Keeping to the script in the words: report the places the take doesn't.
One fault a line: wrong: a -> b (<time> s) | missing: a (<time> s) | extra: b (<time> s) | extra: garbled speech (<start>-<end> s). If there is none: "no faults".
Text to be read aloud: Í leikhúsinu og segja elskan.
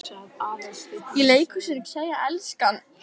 no faults